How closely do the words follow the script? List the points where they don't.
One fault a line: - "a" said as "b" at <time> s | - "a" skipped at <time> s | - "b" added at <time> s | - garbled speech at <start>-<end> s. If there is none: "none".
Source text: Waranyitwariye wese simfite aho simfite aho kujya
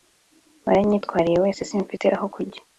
- "simfite aho" skipped at 2.2 s